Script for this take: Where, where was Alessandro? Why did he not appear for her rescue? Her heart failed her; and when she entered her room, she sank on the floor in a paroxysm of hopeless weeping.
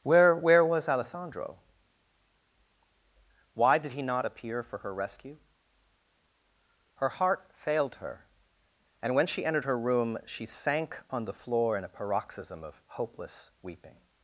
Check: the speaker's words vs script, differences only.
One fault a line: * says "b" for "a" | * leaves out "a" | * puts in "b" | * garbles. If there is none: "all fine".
all fine